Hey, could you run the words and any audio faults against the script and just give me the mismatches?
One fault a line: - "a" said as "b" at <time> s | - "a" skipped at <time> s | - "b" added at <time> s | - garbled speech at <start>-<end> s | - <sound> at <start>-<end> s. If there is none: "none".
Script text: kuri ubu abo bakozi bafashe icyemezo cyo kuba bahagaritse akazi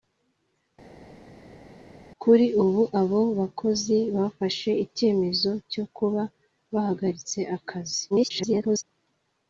- garbled speech at 8.1-8.8 s